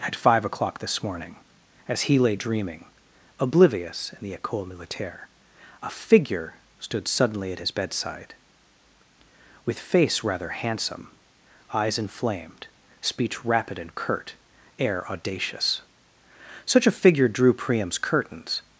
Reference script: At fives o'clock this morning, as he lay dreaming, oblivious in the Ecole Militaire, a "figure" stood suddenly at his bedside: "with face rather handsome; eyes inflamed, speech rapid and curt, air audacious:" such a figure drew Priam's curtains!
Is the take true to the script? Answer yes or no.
no